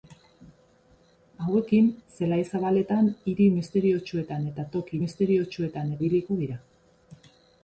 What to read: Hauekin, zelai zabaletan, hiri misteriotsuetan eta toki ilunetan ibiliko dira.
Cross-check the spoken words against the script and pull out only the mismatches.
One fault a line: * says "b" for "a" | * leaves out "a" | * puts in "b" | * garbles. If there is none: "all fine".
* says "misteriotsuetan" for "ilunetan"